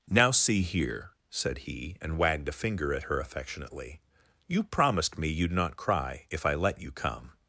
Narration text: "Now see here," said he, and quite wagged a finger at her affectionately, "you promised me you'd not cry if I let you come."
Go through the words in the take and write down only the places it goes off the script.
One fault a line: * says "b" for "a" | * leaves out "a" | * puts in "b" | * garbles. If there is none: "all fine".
* leaves out "quite"